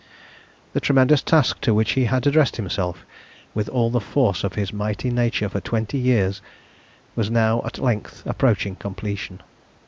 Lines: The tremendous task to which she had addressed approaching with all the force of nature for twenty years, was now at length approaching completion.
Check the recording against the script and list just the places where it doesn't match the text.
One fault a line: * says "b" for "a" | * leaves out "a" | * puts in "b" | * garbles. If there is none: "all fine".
* says "he" for "she"
* says "himself" for "approaching"
* puts in "his mighty"